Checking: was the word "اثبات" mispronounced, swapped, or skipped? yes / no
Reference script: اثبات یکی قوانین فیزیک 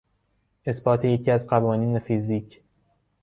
no